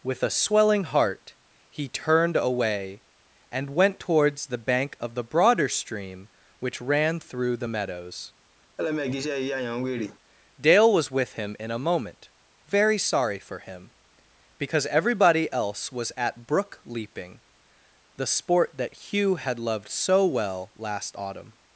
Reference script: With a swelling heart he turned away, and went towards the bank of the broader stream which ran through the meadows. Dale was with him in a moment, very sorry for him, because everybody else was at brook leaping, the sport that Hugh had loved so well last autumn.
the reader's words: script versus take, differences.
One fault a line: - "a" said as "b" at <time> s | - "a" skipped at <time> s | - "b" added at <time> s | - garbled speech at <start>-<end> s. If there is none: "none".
none